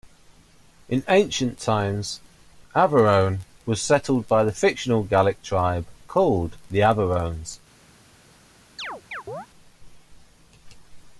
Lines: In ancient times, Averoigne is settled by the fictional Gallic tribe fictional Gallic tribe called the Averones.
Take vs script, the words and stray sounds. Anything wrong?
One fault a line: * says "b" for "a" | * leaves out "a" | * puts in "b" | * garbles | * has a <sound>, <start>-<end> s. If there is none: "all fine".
* says "was" for "is"
* leaves out "fictional Gallic tribe"
* has a chirp, 8.8-9.5 s